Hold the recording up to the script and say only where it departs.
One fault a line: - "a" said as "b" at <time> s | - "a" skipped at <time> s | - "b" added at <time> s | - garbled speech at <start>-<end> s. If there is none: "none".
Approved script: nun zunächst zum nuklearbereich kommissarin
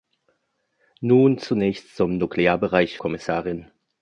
none